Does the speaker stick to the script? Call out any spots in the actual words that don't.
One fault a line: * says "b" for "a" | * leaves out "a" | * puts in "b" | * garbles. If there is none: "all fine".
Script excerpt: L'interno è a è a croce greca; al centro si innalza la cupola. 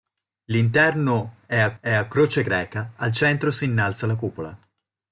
all fine